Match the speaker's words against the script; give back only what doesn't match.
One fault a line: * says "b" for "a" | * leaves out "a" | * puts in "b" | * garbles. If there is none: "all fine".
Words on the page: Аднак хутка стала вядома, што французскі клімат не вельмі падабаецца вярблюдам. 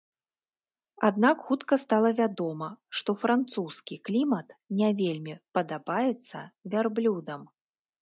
all fine